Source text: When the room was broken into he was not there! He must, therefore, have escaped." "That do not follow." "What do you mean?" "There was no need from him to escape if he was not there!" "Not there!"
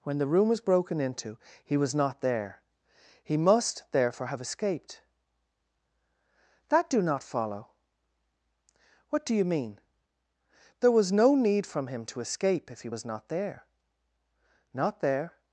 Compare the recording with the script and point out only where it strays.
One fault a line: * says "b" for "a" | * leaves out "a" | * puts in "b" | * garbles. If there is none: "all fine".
all fine